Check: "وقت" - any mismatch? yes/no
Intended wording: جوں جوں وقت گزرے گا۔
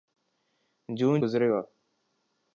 yes